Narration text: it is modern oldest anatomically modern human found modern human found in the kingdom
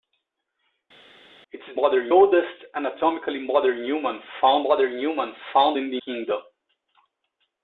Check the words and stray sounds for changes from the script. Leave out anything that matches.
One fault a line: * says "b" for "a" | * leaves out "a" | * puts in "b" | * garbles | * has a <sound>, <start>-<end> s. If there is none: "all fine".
all fine